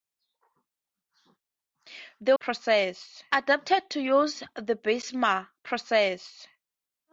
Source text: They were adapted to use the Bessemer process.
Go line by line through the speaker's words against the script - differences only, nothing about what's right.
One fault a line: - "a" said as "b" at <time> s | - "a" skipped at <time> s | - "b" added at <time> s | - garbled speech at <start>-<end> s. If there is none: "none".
- "were" said as "process" at 2.4 s